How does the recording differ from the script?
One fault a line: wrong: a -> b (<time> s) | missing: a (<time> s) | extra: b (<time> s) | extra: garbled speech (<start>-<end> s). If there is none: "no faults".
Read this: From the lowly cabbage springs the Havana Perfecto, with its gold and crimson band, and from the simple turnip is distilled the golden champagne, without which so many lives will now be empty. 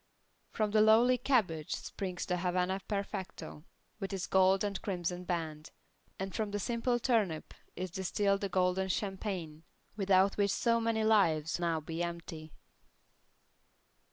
missing: will (11.6 s)